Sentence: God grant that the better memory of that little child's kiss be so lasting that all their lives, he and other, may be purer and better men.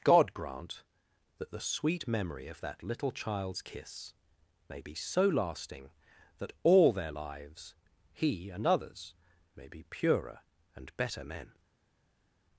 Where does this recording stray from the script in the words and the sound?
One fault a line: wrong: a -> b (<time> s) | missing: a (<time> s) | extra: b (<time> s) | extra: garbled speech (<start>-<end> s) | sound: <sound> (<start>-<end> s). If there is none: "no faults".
wrong: better -> sweet (1.6 s)
extra: may (4.7 s)
wrong: other -> others (8.7 s)